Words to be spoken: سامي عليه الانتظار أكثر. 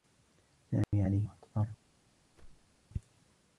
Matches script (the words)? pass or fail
fail